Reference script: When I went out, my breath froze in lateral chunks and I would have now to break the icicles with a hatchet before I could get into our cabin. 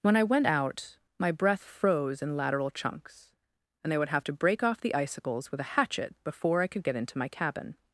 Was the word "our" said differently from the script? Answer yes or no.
yes